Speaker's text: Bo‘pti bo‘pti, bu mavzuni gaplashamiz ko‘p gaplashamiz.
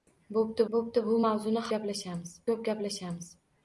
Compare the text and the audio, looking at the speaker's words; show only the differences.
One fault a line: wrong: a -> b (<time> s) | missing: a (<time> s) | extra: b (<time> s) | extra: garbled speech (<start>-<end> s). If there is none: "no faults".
no faults